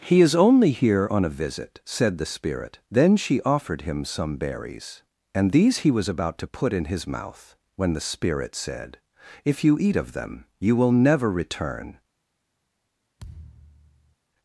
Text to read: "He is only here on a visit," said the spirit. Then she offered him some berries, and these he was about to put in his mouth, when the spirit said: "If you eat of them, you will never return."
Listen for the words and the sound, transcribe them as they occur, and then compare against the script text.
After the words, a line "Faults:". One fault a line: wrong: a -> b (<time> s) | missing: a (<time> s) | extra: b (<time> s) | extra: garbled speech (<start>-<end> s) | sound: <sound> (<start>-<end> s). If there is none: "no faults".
"He is only here on a visit," said the spirit. Then she offered him some berries, and these he was about to put in his mouth, when the spirit said: "If you eat of them, you will never return."
Faults:
sound: thud (13.2-14.2 s)